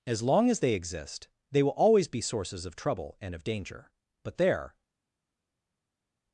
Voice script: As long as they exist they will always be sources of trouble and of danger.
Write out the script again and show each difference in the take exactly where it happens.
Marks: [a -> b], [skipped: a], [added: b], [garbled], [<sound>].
As long as they exist they will always be sources of trouble and of danger. [added: But there]